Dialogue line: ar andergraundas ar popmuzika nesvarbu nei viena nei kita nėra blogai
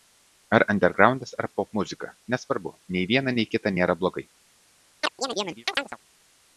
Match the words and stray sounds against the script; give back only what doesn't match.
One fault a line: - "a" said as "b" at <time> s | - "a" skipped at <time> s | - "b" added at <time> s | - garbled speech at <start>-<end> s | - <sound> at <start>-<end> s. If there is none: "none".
- chirp at 5.0-6.0 s